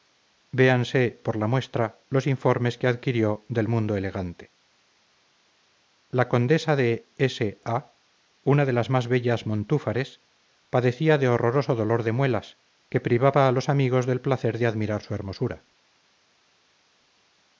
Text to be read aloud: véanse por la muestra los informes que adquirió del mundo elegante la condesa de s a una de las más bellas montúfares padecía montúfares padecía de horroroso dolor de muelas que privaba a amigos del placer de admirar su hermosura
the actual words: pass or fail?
fail